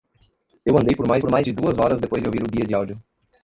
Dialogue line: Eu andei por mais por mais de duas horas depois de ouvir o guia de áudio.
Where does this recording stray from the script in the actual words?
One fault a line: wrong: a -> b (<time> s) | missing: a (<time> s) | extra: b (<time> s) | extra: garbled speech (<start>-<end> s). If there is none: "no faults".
no faults